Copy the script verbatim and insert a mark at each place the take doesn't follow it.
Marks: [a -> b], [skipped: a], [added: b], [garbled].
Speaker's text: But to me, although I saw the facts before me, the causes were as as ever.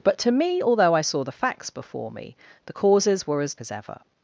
But to me, although I saw the facts before me, the causes were as as ever.